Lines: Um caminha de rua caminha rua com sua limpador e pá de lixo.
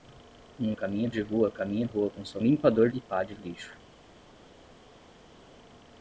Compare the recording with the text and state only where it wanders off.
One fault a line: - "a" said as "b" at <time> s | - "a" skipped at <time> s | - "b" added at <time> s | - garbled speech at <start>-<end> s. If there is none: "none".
none